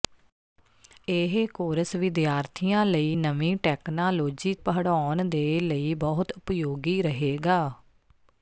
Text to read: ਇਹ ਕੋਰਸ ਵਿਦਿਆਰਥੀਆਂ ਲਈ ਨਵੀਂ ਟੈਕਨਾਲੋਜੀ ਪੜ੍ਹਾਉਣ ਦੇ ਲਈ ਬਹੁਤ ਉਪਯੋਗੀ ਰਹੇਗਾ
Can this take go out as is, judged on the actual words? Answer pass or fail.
pass